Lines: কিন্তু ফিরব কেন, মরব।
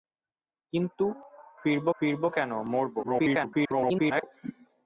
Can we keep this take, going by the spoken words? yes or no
no